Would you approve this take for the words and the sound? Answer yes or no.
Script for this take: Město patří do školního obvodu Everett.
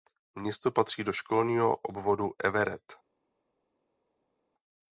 yes